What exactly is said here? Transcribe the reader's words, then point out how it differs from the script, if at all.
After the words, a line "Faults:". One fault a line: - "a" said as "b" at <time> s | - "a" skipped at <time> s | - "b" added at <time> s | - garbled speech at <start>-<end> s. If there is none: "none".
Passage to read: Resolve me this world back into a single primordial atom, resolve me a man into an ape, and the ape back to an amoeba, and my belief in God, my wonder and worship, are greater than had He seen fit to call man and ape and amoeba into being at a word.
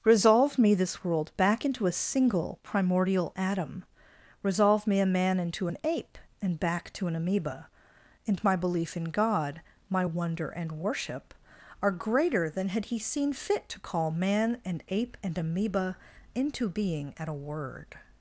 Resolve me this world back into a single primordial atom, resolve me a man into an ape, and back to an amoeba, and my belief in God, my wonder and worship, are greater than had He seen fit to call man and ape and amoeba into being at a word.
Faults:
- "the ape" skipped at 6.6 s